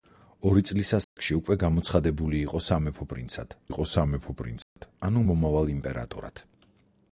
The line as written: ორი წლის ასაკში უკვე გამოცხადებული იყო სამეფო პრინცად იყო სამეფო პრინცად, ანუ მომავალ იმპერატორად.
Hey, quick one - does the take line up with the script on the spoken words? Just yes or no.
yes